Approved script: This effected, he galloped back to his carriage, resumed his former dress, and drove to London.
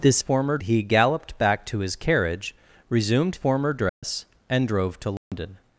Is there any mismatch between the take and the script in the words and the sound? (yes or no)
yes